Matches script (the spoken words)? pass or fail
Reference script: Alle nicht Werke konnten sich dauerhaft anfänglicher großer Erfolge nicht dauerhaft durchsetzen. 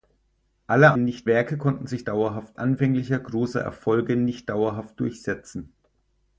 pass